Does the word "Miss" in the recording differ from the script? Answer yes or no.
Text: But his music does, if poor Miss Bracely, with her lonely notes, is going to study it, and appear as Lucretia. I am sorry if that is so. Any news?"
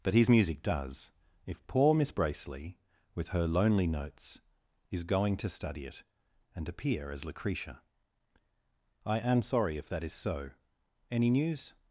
no